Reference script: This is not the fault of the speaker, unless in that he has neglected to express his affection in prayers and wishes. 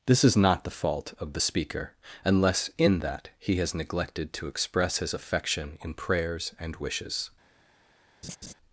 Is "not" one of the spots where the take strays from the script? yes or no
no